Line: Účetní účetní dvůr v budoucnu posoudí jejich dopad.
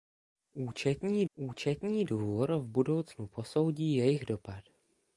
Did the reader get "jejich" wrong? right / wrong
right